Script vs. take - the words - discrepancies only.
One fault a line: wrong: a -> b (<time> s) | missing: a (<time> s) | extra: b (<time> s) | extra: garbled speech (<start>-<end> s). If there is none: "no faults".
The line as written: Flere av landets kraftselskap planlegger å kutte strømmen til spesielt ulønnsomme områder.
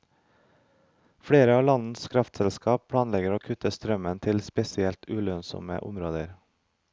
no faults